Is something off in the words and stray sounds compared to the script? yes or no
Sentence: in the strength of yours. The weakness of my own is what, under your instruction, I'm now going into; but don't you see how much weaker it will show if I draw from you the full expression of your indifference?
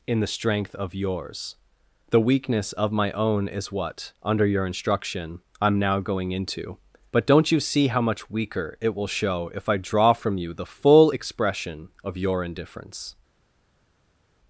no